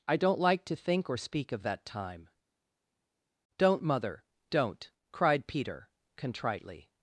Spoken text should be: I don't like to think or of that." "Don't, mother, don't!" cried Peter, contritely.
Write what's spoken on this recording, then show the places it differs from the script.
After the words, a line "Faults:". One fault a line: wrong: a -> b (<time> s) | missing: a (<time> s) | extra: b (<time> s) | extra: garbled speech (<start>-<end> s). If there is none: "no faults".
I don't like to think or speak of that time." "Don't, mother, don't!" cried Peter, contritely.
Faults:
extra: speak (1.2 s)
extra: time (1.9 s)